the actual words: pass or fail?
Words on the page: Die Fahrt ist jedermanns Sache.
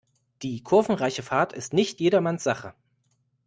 fail